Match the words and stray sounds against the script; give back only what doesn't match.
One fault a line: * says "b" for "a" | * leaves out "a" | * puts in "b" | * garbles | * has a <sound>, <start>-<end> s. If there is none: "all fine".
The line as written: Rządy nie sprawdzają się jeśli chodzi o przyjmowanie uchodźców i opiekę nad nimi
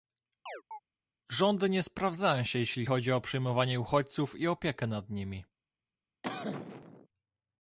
* has a chirp, 0.5-0.8 s
* has a cough, 6.2-7.1 s